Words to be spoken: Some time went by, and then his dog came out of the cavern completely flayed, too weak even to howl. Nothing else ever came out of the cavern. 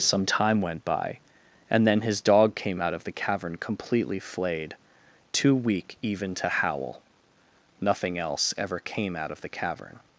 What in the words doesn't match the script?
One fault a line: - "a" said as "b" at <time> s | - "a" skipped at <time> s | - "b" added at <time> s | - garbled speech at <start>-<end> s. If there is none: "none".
none